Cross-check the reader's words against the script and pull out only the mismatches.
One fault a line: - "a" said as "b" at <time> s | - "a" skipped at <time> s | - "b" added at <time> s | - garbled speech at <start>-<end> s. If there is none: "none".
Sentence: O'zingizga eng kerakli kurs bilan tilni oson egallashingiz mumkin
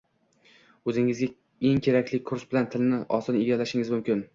none